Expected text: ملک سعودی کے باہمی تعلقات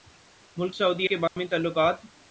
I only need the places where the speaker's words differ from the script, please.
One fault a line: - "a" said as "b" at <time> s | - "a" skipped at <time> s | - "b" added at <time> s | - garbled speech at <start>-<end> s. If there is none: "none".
none